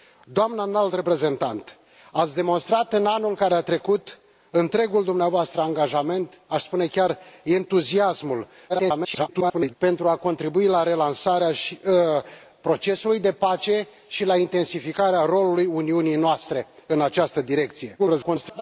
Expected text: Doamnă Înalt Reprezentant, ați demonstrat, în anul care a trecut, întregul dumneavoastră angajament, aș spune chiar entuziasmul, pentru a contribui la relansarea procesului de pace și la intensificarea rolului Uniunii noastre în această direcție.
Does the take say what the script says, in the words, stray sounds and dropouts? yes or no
no